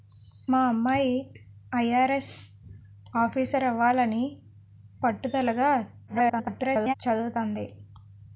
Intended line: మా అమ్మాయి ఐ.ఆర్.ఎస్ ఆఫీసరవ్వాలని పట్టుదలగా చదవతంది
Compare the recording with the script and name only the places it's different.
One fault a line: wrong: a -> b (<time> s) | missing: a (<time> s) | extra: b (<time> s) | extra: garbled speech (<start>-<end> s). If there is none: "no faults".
extra: garbled speech (6.1-6.9 s)